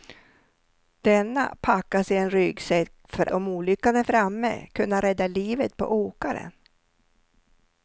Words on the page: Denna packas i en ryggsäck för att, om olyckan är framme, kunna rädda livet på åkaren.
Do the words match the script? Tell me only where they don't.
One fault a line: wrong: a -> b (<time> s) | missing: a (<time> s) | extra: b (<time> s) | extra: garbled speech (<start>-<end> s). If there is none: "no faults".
missing: att (3.3 s)